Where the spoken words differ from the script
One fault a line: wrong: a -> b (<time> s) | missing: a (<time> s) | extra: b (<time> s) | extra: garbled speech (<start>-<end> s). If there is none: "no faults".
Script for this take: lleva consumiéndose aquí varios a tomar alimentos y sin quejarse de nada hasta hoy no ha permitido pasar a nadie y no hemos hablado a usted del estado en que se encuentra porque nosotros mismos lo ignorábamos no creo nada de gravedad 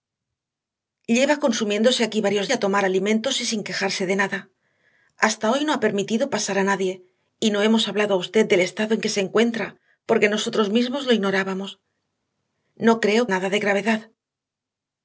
no faults